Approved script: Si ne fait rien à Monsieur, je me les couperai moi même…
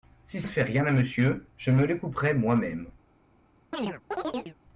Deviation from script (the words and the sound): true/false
true